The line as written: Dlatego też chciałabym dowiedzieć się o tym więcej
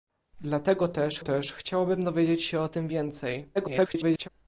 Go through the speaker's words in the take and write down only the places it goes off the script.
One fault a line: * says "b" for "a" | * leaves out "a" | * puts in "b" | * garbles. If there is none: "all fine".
* puts in "też"
* garbles